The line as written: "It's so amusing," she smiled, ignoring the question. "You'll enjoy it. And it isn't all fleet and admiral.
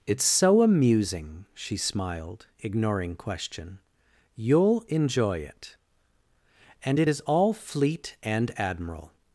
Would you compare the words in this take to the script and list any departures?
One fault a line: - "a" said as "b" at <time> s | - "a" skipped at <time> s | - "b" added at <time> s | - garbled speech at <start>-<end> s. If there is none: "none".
- "the" skipped at 3.1 s
- "isn't" said as "is" at 7.1 s